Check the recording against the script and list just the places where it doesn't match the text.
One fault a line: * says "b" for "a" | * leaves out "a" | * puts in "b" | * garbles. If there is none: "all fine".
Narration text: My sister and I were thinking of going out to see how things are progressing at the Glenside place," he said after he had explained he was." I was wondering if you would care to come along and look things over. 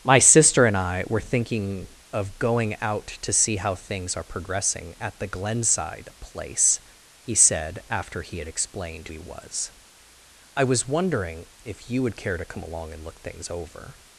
all fine